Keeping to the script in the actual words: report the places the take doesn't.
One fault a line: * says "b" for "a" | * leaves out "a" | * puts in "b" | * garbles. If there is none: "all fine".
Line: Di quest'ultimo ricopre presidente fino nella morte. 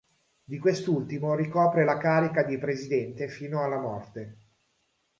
* puts in "la carica di"
* says "alla" for "nella"